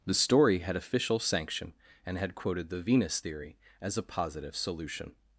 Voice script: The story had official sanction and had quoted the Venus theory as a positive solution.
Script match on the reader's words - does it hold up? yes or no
yes